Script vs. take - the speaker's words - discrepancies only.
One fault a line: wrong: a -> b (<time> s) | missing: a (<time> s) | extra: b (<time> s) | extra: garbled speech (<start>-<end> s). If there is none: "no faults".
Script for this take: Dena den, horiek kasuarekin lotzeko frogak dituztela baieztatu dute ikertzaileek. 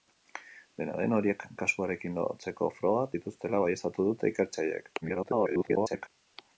extra: garbled speech (5.0-6.1 s)